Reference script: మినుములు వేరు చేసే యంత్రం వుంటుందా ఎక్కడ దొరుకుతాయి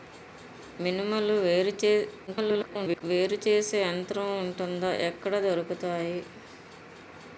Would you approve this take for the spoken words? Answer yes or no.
no